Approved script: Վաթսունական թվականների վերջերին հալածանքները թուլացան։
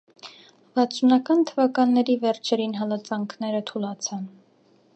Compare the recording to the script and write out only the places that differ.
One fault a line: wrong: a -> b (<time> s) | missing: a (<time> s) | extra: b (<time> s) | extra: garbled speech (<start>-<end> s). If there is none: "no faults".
no faults